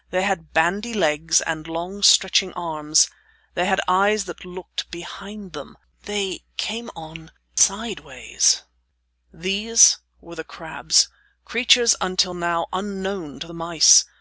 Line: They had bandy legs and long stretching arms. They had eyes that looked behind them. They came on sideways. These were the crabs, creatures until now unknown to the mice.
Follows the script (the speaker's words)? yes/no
yes